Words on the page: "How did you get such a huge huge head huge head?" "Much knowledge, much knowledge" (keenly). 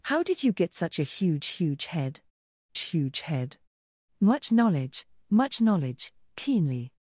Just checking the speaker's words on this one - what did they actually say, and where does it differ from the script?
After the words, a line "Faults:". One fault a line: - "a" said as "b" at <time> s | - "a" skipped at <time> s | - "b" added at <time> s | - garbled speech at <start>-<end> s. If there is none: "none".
"How did you get such a huge huge head huge head?" "Much knowledge, much knowledge" (keenly).
Faults:
none